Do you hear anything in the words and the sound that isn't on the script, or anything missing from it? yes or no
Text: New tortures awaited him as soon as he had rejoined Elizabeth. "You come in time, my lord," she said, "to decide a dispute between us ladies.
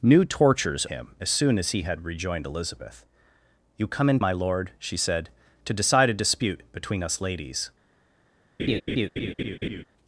yes